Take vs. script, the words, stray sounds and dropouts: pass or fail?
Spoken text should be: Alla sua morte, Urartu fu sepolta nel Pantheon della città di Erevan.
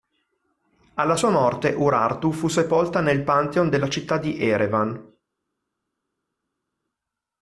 pass